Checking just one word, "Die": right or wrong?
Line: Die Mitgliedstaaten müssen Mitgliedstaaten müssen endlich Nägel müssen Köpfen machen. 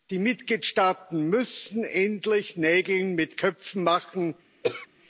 right